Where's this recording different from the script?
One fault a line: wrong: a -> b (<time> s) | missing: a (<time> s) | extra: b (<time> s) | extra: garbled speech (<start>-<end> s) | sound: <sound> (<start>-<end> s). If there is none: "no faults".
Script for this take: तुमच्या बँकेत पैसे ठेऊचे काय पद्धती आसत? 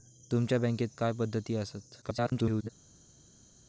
missing: पैसे ठेऊचे (0.9 s)
extra: garbled speech (2.0-2.7 s)